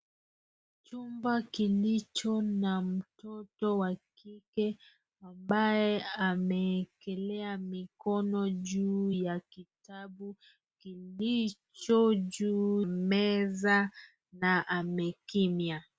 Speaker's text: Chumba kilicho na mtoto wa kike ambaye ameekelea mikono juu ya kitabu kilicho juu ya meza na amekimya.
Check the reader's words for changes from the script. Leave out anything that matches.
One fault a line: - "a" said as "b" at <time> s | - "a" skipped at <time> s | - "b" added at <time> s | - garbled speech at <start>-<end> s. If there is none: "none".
- "ya" skipped at 12.8 s